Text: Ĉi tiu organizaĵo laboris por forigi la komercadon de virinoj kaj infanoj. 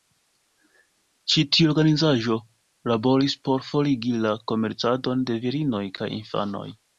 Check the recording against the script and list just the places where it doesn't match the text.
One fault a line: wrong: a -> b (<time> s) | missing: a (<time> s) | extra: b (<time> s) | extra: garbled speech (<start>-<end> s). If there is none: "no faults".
no faults